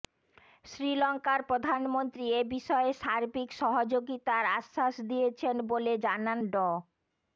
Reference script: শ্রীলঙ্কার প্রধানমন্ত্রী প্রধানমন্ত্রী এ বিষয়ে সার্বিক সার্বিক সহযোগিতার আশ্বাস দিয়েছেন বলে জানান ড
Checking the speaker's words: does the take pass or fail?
fail